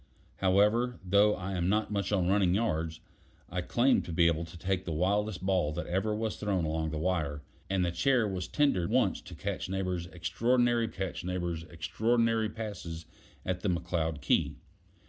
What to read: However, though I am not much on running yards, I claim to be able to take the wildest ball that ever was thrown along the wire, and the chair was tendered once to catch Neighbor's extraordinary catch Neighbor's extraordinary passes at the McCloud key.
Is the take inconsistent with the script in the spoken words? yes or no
no